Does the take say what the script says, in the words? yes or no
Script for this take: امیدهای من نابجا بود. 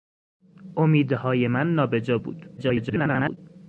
no